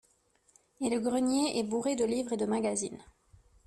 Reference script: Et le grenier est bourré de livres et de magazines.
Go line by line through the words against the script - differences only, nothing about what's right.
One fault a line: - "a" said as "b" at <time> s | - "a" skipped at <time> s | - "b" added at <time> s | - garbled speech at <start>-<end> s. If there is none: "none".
none